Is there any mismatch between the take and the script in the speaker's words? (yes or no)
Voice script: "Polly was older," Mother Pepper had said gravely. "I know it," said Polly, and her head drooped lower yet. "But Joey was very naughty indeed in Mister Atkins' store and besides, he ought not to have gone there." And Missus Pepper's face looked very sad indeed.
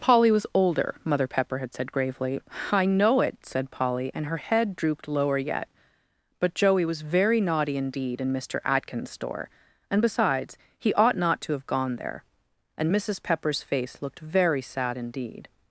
no